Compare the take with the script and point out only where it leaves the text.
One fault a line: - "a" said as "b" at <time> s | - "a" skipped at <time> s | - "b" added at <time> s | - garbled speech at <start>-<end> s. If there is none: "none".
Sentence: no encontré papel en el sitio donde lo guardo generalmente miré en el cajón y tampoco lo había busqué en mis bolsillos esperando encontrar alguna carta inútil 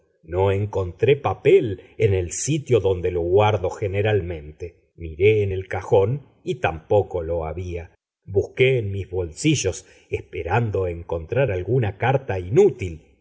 none